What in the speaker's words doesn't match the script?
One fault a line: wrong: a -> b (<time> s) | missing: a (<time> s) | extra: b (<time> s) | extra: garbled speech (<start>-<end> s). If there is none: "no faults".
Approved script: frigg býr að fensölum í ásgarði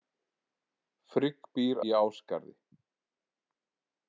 missing: að fensölum (1.8 s)